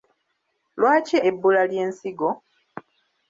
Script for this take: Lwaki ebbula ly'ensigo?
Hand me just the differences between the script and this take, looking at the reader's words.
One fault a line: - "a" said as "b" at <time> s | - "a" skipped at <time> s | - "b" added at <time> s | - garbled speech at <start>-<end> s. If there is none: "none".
none